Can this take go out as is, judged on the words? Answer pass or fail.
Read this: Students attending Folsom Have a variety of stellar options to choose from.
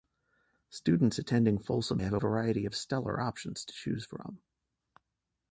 pass